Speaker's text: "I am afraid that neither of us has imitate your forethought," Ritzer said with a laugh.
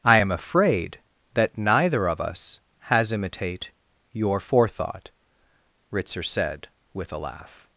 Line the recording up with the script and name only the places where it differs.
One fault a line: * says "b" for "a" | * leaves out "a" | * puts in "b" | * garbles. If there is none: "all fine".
all fine